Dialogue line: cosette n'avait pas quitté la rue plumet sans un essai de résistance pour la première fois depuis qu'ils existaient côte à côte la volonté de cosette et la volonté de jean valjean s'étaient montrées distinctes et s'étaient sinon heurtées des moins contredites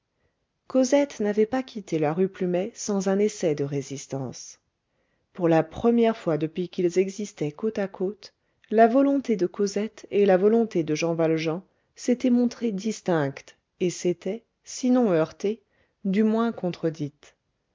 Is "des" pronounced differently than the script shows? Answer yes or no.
yes